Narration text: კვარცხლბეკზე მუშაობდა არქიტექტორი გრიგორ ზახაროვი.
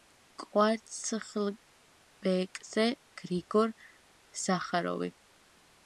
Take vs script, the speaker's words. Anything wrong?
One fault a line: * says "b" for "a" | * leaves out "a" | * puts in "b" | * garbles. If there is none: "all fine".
* leaves out "მუშაობდა არქიტექტორი"